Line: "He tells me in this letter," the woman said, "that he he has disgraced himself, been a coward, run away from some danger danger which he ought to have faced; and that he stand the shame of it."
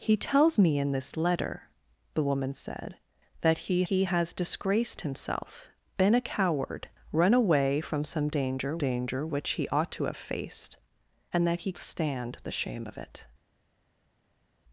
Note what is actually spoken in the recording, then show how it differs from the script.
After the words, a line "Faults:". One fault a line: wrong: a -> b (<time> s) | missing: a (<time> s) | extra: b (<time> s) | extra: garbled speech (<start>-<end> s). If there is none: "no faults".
"He tells me in this letter," the woman said, "that he he has disgraced himself, been a coward, run away from some danger danger which he ought to have faced; and that he stand the shame of it."
Faults:
no faults